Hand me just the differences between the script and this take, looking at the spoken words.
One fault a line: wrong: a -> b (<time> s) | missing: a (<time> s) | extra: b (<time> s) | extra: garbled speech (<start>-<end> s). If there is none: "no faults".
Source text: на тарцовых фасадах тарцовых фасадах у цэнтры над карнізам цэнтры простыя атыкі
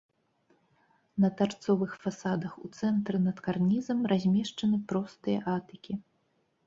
missing: тарцовых фасадах (2.5 s)
wrong: цэнтры -> размешчаны (4.1 s)